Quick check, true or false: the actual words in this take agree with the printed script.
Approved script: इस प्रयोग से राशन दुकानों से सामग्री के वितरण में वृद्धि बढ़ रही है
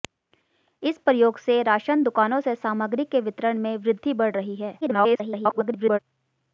false